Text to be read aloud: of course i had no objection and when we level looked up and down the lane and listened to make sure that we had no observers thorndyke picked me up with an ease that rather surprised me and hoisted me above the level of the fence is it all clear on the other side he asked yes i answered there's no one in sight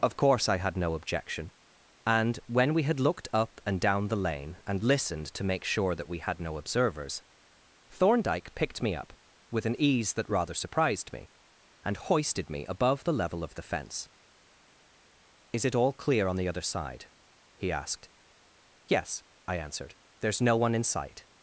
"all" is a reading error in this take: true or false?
false